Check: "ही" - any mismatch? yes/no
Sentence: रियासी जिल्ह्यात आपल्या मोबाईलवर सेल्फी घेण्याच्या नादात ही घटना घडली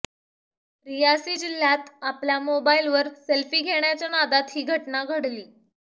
no